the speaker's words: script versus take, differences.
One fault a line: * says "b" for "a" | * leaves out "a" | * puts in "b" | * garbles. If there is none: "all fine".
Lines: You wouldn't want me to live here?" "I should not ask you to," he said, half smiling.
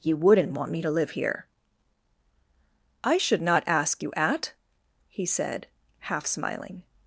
* says "at" for "to"